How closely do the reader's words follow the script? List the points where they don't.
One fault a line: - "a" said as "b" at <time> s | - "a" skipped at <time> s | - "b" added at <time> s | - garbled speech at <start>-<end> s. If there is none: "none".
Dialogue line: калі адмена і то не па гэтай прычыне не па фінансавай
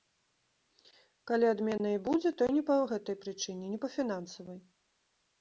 - "будзе" added at 2.1 s